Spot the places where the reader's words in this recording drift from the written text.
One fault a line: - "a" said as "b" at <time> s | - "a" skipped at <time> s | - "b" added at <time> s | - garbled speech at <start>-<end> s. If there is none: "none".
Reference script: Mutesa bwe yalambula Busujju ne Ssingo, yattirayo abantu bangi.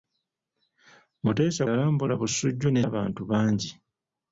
- "bwe" skipped at 1.6 s
- "Ssingo yattirayo" skipped at 2.8 s